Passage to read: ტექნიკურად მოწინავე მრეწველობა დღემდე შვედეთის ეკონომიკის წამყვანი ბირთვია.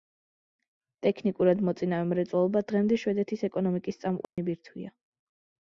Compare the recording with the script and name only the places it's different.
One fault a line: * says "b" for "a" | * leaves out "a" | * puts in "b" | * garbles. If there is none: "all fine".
all fine